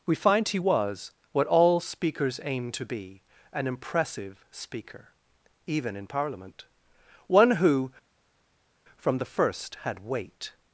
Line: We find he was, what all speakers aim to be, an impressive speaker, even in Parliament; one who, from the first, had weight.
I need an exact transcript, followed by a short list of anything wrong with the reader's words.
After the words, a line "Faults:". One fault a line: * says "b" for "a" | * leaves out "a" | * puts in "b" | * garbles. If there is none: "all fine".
We find he was, what all speakers aim to be, an impressive speaker, even in Parliament; one who, from the first, had weight.
Faults:
all fine